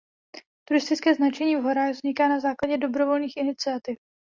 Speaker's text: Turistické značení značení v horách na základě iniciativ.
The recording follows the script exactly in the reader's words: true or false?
false